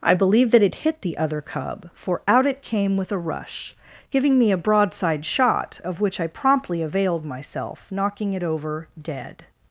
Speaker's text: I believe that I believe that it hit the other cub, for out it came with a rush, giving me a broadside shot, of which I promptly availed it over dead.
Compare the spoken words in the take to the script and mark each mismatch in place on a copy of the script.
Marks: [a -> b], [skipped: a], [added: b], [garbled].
I believe that [skipped: I believe that] it hit the other cub, for out it came with a rush, giving me a broadside shot, of which I promptly availed [added: myself knocking] it over dead.